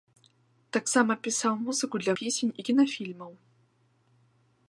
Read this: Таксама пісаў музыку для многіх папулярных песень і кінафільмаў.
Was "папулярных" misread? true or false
true